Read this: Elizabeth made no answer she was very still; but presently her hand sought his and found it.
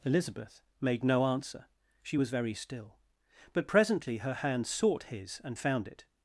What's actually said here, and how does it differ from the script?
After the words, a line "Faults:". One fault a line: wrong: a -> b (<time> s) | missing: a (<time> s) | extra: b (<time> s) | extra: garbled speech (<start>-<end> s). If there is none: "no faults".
Elizabeth made no answer she was very still; but presently her hand sought his and found it.
Faults:
no faults